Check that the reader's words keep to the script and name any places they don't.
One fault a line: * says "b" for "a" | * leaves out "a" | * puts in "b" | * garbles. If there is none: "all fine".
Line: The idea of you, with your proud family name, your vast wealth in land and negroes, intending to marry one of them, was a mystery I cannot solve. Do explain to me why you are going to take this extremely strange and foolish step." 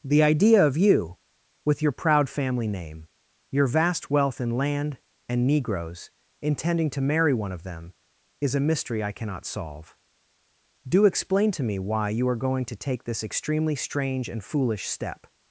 * says "is" for "was"